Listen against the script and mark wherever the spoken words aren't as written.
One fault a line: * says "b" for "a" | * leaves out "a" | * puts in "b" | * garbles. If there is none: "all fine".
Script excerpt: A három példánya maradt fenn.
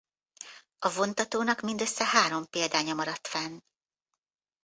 * puts in "vontatónak mindössze"